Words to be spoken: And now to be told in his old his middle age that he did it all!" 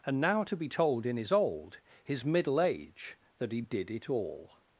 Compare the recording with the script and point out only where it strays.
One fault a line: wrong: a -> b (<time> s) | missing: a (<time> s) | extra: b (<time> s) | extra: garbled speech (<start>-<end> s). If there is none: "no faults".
no faults